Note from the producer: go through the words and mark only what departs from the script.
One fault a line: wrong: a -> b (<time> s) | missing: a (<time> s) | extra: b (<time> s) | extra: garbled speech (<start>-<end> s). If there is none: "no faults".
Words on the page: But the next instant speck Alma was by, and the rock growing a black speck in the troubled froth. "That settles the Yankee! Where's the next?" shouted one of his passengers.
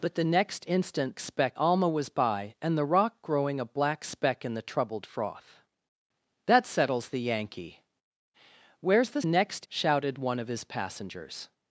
no faults